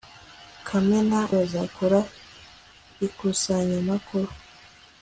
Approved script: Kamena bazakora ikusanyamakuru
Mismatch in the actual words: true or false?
false